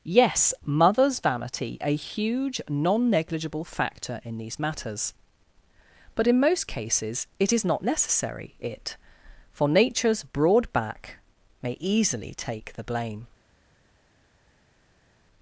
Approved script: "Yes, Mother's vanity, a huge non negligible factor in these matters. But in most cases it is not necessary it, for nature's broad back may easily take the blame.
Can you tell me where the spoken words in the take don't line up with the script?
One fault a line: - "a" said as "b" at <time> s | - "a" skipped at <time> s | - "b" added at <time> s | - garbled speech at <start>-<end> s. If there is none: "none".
none